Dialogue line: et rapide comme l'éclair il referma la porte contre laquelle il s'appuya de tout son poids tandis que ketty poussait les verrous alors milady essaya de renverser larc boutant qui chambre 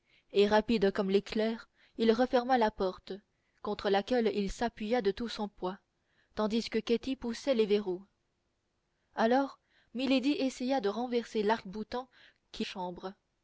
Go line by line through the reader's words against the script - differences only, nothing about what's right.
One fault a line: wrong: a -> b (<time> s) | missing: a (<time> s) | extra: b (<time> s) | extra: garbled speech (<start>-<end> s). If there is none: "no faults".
no faults